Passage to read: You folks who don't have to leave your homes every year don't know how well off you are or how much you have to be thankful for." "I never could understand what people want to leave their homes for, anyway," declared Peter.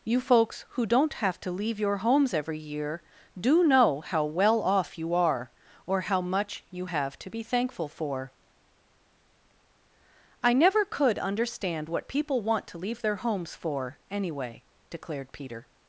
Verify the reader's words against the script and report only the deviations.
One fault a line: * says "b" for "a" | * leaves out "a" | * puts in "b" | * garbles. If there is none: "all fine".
* says "do" for "don't"